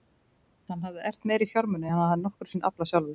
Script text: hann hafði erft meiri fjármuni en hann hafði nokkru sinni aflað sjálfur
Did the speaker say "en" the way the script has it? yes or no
yes